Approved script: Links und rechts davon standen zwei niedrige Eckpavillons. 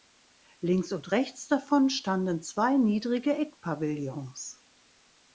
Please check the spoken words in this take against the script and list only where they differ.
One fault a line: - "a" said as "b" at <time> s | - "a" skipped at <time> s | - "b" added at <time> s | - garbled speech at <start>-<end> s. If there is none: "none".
none